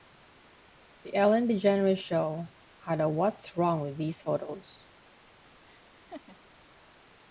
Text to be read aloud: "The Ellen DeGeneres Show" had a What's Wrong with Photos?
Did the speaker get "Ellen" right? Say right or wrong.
right